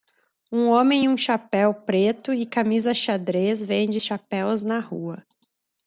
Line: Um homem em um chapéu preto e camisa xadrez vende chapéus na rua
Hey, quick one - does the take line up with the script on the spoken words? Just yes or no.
yes